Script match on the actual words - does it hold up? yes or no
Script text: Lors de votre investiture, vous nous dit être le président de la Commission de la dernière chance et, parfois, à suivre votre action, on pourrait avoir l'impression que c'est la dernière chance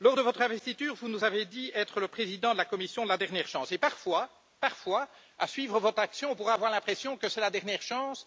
no